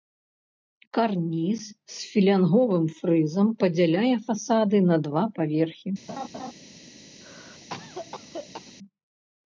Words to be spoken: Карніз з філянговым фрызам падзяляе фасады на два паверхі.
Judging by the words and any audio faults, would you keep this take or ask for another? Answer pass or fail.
fail